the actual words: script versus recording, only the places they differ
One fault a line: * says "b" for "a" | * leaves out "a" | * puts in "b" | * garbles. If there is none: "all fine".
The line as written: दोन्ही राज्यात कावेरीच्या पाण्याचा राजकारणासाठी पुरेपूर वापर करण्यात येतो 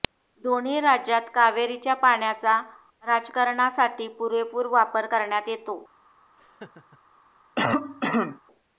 all fine